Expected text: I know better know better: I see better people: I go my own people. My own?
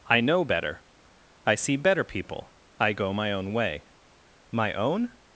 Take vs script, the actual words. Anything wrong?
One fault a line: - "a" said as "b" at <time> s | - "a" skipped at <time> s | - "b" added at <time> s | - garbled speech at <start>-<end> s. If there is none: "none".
- "know better" skipped at 0.8 s
- "people" said as "way" at 3.5 s